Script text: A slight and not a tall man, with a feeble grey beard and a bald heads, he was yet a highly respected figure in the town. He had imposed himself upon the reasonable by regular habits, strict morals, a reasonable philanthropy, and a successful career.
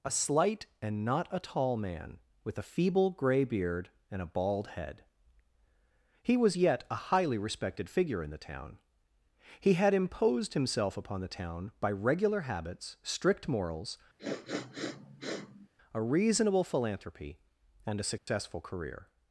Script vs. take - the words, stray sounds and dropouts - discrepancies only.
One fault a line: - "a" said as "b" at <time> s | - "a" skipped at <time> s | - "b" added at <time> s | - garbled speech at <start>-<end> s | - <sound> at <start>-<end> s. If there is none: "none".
- "heads" said as "head" at 4.7 s
- "reasonable" said as "town" at 11.3 s
- sniff at 14.2-15.7 s
- dropout at 18.2-18.3 s